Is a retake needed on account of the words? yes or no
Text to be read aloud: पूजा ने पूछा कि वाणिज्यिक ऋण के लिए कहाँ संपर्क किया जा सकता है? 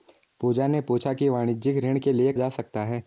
yes